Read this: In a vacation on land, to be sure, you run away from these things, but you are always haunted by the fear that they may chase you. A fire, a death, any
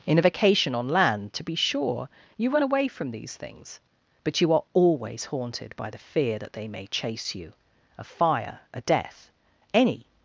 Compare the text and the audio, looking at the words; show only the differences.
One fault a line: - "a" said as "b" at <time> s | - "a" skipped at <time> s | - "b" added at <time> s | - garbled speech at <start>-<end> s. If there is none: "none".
none